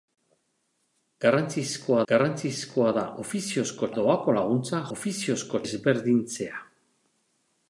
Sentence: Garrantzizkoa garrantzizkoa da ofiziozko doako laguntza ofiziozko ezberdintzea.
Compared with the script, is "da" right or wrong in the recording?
right